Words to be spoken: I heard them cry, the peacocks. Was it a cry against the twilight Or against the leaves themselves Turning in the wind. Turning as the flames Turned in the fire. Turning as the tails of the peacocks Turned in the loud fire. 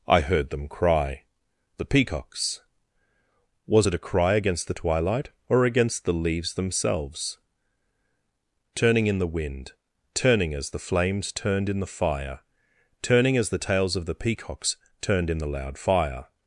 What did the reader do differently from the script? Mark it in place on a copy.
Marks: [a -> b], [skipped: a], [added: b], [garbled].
I heard them cry, the peacocks. Was it a cry against the twilight Or against the leaves themselves Turning in the wind. Turning as the flames Turned in the fire. Turning as the tails of the peacocks Turned in the loud fire.